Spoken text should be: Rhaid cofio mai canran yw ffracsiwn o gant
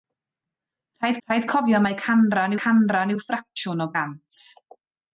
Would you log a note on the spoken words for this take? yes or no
yes